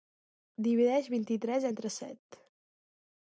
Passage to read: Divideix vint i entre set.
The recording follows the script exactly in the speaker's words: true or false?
false